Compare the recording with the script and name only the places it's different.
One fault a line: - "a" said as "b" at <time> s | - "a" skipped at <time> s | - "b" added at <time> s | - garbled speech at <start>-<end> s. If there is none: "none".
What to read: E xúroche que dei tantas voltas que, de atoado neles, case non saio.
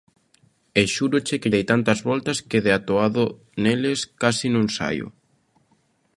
none